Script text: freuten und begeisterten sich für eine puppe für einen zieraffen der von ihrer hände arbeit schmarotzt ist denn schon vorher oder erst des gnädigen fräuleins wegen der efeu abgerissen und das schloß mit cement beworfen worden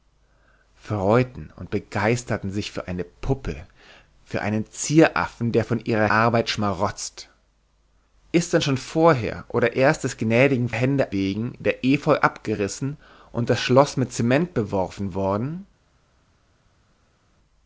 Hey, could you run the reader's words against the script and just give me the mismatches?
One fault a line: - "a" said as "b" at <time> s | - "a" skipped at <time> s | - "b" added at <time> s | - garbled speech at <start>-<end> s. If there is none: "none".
- "hände" skipped at 6.1 s
- "fräuleins" said as "hände" at 10.7 s